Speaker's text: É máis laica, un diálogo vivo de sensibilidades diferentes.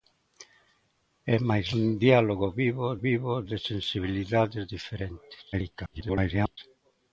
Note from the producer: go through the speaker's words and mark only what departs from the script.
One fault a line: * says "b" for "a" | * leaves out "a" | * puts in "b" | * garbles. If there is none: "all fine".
* leaves out "laica"
* puts in "vivo"
* garbles